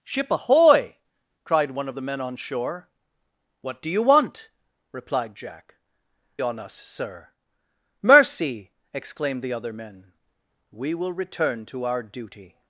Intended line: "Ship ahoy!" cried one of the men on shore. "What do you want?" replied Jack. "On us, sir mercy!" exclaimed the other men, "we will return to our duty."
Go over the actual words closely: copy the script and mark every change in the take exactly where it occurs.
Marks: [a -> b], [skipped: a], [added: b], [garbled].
"Ship ahoy!" cried one of the men on shore. "What do you want?" replied Jack. "On us, sir mercy!" exclaimed the other men, "we will return to our duty."